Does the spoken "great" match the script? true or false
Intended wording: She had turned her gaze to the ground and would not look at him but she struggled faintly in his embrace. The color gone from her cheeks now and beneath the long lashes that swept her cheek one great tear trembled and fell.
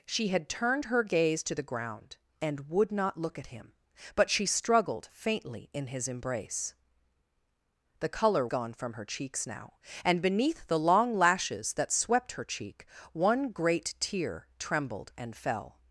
true